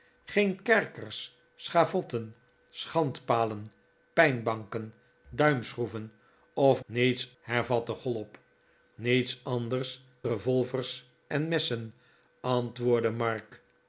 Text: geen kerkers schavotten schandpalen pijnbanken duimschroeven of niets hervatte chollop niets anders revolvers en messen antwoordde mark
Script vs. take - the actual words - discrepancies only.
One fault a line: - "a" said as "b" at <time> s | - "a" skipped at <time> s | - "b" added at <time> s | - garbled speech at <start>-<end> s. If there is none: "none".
none